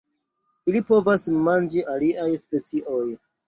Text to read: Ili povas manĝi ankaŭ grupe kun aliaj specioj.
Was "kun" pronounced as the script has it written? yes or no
no